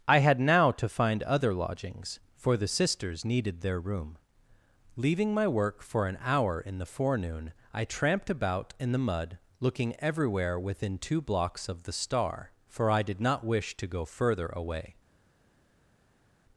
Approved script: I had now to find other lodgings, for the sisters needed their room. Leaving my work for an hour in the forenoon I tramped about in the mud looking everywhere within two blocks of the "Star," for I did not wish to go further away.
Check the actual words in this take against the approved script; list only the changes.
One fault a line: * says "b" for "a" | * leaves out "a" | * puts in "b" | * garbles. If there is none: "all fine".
all fine